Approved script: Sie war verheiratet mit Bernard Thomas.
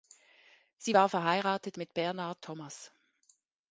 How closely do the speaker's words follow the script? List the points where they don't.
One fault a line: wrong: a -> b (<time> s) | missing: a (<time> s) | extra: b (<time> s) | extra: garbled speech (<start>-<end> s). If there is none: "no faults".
no faults